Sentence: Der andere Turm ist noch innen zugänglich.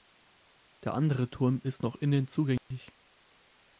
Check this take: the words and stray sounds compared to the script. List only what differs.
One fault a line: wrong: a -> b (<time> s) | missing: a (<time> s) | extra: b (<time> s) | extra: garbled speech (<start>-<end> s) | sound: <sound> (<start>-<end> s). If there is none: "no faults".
sound: dropout (2.6-2.7 s)